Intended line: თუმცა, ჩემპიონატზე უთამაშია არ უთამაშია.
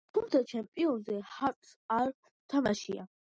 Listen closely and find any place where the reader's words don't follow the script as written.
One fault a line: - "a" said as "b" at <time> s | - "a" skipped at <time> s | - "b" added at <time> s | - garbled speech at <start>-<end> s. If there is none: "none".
- "უთამაშია" said as "ჰარტს" at 1.3 s